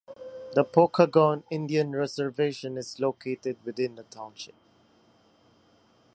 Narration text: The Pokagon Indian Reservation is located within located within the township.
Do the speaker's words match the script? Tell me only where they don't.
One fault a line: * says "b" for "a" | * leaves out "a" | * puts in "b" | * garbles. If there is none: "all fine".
* leaves out "located within"